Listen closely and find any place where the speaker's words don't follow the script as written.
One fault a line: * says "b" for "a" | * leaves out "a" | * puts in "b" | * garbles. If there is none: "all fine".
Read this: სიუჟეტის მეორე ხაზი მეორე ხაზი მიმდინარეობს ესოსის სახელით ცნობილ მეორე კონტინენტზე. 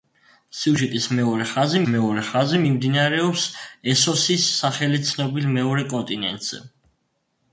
all fine